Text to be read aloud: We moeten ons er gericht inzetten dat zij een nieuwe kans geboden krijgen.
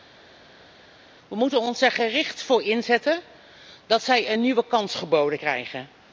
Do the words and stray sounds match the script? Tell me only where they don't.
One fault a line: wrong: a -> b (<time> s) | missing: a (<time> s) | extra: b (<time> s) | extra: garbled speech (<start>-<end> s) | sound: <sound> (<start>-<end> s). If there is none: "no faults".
extra: voor (2.4 s)